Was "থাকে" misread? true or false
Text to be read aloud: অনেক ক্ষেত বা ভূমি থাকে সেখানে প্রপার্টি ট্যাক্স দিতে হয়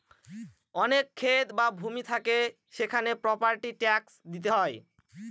false